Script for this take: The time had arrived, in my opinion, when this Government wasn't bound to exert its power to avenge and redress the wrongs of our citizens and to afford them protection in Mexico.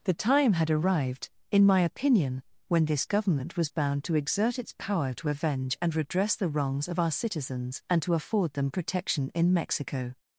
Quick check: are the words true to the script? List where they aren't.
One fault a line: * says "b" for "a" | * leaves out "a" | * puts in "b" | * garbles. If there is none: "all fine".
* says "was" for "wasn't"